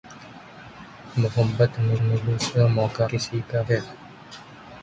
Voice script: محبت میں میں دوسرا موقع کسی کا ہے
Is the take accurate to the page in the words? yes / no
yes